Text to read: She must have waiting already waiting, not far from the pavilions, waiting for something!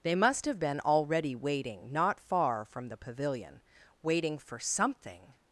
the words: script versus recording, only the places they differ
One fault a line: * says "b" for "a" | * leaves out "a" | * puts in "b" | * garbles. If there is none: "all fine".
* says "They" for "She"
* says "been" for "waiting"
* says "pavilion" for "pavilions"